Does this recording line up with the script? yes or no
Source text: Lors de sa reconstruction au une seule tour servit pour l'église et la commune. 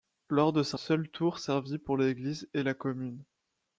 no